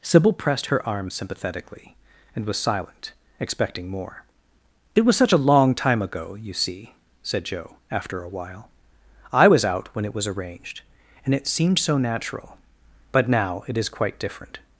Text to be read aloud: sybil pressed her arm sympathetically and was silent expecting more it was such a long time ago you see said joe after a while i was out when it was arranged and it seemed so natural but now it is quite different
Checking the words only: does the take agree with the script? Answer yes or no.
yes